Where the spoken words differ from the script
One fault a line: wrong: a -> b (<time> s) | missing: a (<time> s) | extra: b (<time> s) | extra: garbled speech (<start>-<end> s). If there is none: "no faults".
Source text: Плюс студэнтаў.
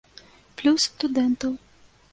no faults